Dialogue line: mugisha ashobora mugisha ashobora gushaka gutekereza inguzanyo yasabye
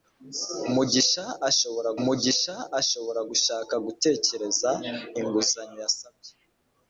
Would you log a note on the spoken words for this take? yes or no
no